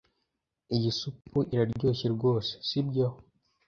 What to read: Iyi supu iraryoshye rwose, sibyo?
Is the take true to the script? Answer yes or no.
yes